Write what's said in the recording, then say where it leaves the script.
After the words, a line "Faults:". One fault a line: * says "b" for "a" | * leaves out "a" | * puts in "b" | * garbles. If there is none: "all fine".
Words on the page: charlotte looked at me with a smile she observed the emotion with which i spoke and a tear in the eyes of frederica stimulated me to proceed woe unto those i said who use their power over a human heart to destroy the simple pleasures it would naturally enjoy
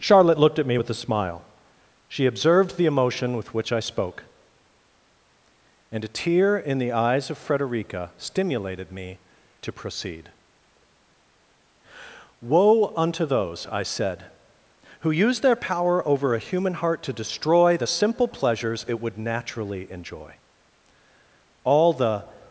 charlotte looked at me with a smile she observed the emotion with which i spoke and a tear in the eyes of frederica stimulated me to proceed woe unto those i said who use their power over a human heart to destroy the simple pleasures it would naturally enjoy all the
Faults:
* puts in "all the"